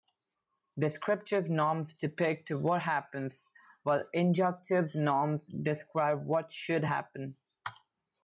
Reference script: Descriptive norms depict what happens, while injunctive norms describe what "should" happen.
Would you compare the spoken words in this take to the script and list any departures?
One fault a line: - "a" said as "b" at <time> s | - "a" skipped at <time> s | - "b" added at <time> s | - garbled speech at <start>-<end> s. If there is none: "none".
none